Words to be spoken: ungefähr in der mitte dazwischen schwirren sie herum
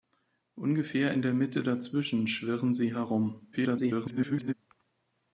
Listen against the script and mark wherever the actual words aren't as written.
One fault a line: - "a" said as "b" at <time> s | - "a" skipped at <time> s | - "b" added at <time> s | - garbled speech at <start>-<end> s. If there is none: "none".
- garbled speech at 3.5-4.5 s